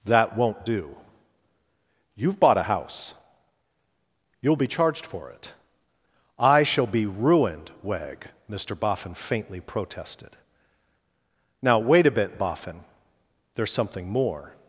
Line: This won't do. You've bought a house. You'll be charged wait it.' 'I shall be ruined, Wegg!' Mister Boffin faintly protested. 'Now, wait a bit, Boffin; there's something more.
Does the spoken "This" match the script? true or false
false